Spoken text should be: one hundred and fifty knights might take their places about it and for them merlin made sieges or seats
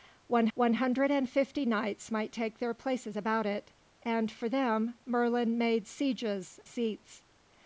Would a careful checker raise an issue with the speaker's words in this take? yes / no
yes